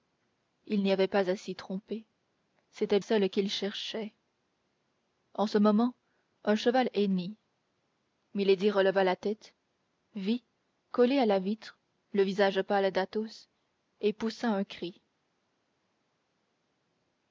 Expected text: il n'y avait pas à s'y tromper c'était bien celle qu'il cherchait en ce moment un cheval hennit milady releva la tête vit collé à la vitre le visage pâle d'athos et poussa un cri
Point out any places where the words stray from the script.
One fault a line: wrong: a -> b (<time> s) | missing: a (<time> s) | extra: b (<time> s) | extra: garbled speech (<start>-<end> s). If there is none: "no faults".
missing: bien (3.0 s)